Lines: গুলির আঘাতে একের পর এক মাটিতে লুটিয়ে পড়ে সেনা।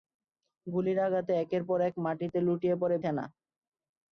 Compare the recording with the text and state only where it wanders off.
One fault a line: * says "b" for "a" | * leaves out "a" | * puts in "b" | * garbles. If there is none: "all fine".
all fine